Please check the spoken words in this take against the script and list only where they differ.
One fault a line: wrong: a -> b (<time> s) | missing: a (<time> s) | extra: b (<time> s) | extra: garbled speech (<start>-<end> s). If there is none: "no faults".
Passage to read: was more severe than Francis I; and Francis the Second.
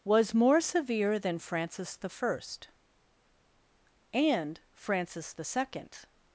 no faults